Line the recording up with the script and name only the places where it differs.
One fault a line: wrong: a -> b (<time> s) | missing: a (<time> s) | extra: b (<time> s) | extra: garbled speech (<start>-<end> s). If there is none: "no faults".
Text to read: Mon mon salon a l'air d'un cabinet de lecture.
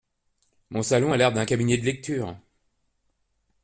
missing: mon (0.8 s)